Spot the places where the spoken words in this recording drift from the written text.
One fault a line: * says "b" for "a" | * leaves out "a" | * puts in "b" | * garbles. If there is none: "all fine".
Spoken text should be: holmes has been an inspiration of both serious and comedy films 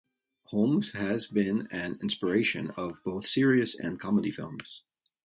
all fine